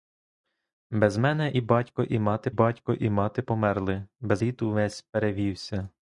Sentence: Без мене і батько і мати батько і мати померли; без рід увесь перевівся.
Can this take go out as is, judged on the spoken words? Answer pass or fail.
pass